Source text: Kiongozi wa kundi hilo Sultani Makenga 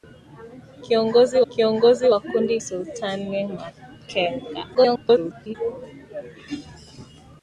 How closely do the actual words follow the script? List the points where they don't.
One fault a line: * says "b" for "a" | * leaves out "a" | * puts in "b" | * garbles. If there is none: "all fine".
* puts in "kiongozi"
* leaves out "hilo"
* garbles